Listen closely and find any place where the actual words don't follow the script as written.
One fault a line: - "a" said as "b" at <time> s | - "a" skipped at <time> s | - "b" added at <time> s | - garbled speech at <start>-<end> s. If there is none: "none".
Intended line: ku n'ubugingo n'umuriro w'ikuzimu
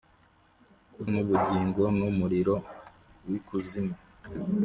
none